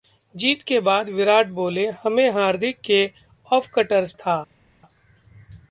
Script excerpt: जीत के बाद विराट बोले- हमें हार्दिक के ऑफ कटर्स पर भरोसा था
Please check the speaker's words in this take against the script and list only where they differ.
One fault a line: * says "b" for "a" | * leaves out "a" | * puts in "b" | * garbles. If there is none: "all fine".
* leaves out "पर भरोसा"